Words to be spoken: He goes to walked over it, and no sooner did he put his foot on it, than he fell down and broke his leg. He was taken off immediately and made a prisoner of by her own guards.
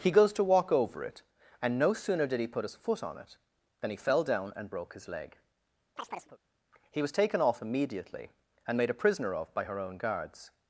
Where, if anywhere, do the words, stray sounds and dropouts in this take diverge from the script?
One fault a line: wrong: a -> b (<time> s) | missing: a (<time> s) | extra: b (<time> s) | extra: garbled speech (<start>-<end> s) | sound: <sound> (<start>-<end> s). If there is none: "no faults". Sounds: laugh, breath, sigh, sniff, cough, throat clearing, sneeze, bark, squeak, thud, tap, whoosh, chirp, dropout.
wrong: walked -> walk (0.4 s)
sound: chirp (6.0-6.4 s)